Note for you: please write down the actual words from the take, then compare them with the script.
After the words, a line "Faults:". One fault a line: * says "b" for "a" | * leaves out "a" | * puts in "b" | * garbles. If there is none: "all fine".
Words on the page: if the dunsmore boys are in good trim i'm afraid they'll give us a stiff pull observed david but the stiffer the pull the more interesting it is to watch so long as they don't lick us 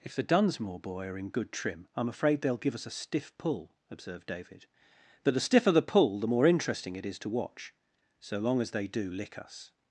if the dunsmore boy are in good trim i'm afraid they'll give us a stiff pull observed david but the stiffer the pull the more interesting it is to watch so long as they do lick us
Faults:
* says "boy" for "boys"
* says "do" for "don't"